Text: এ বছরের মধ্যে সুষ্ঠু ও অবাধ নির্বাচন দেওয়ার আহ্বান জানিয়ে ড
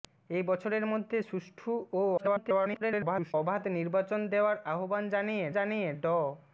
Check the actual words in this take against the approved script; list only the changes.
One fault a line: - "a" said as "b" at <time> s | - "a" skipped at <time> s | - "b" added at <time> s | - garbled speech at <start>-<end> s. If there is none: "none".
- garbled speech at 2.2-3.3 s
- "জানিয়ে" added at 5.5 s